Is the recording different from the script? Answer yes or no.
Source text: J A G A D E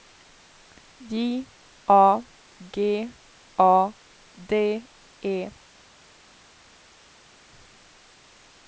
no